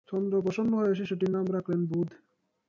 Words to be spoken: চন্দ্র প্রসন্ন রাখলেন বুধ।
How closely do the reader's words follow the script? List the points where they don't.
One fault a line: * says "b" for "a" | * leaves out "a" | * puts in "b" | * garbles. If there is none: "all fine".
* puts in "হয়ে শিশুটির নাম"